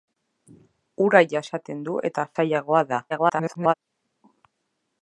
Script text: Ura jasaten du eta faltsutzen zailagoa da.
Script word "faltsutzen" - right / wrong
wrong